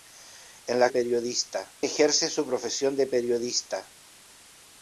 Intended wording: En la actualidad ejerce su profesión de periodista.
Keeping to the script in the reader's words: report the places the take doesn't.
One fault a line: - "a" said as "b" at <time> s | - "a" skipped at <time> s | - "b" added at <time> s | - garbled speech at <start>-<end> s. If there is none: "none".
- "actualidad" said as "periodista" at 0.9 s